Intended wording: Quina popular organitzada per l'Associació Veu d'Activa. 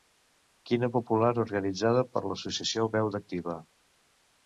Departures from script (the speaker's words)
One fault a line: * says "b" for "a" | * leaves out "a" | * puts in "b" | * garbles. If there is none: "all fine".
all fine